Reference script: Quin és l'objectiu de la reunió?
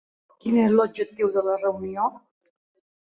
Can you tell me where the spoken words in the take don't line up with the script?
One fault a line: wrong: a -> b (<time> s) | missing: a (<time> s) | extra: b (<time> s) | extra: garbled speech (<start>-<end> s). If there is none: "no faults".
no faults